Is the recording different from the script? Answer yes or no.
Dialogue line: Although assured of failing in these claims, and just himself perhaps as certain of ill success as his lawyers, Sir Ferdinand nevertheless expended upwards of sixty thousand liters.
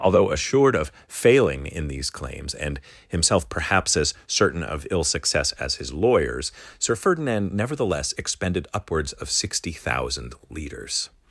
yes